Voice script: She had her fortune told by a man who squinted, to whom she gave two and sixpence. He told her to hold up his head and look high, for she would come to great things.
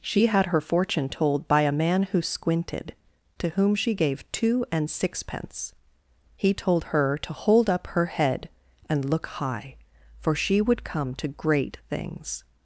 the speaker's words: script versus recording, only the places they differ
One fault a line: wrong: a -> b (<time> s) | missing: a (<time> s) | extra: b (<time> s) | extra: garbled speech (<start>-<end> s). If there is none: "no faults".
wrong: his -> her (7.9 s)